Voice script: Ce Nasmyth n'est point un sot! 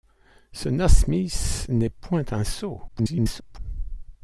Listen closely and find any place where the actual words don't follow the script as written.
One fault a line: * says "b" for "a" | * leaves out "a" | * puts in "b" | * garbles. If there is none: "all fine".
* garbles